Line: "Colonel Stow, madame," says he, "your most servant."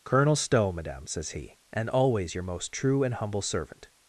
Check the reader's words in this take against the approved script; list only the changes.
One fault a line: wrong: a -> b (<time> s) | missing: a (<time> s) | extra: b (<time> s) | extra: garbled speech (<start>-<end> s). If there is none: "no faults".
extra: and always (1.7 s)
extra: true and humble (2.7 s)